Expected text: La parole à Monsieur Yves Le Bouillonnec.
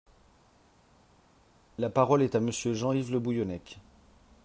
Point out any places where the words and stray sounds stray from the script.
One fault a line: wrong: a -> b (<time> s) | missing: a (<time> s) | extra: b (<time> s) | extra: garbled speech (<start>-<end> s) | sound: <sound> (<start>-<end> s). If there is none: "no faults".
extra: est (2.2 s)
extra: Jean (2.7 s)